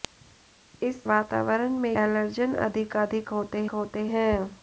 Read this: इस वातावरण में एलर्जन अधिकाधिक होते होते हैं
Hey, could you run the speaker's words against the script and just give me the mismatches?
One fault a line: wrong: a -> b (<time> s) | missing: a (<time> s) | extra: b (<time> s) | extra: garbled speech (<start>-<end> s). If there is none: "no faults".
no faults